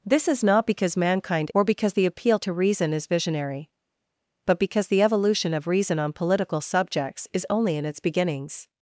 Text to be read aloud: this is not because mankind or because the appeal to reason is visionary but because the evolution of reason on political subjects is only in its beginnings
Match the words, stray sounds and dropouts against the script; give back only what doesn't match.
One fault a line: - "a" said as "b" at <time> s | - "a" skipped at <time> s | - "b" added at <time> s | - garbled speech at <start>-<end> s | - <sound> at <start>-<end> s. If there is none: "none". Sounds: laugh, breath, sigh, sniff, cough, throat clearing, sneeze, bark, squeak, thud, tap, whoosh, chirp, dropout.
none